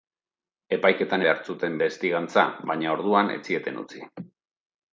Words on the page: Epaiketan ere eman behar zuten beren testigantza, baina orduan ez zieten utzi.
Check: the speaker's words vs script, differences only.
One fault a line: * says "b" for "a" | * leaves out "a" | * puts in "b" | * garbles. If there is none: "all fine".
* leaves out "ere eman"
* leaves out "beren"